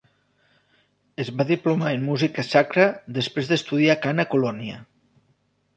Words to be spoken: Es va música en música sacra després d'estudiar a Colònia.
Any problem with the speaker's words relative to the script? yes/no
yes